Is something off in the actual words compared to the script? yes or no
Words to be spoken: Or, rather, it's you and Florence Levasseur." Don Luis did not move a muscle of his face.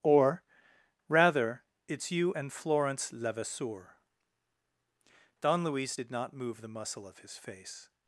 yes